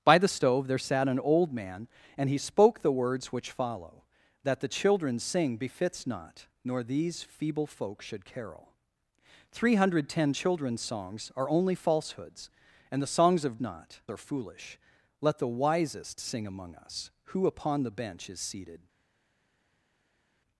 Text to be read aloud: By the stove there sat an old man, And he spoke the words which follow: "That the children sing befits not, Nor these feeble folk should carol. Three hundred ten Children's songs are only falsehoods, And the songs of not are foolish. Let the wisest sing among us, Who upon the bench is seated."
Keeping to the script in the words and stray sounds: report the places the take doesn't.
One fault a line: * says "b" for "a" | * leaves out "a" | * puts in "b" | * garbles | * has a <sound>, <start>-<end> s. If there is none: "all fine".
all fine